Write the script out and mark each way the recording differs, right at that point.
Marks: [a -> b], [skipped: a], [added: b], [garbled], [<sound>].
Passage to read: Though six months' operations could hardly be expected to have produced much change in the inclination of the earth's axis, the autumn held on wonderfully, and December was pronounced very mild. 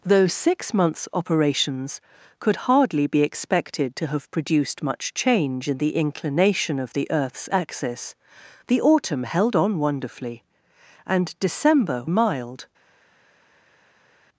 Though six months' operations could hardly be expected to have produced much change in the inclination of the earth's axis, the autumn held on wonderfully, and December [skipped: was pronounced very] mild.